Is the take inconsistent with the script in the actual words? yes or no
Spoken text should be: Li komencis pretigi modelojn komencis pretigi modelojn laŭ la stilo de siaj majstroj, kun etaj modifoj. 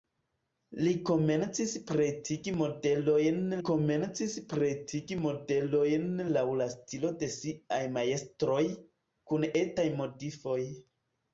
no